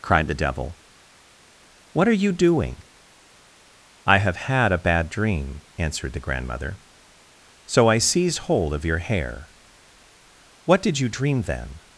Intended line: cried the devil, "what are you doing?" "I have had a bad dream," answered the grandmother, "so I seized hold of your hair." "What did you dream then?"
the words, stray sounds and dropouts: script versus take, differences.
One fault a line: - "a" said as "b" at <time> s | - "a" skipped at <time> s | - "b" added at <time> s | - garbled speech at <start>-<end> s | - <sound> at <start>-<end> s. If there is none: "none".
none